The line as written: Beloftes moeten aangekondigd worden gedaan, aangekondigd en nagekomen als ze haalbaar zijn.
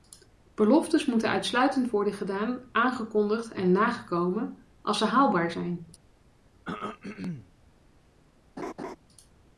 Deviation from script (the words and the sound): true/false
true